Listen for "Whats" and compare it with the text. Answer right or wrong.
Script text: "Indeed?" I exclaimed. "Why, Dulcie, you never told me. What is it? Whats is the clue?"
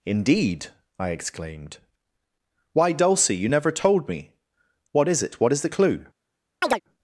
wrong